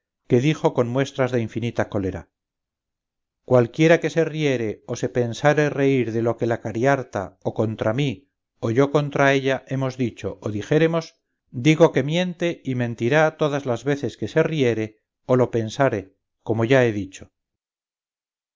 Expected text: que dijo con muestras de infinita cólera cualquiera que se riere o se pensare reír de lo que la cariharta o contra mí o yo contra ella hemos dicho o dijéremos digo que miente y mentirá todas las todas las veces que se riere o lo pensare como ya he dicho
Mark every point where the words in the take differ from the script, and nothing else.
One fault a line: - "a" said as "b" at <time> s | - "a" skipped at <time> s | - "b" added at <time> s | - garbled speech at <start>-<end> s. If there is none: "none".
- "todas las" skipped at 13.8 s